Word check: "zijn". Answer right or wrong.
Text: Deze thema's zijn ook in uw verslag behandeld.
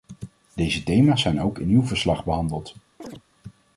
right